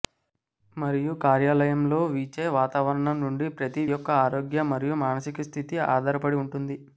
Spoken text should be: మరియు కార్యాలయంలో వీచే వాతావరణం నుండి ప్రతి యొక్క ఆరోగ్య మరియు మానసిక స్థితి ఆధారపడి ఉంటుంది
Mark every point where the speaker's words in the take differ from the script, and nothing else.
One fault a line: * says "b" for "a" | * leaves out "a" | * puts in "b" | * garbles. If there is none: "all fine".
all fine